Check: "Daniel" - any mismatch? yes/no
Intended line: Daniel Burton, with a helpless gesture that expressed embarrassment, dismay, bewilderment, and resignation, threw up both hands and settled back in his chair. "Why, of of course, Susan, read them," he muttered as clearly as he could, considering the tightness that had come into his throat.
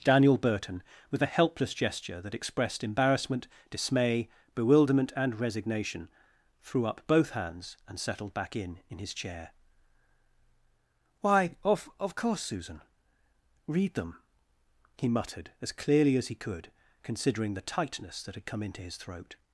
no